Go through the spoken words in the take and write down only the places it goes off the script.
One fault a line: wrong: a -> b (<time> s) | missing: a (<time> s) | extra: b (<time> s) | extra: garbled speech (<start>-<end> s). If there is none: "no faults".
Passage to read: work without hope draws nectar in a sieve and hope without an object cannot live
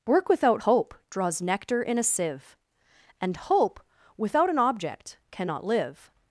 no faults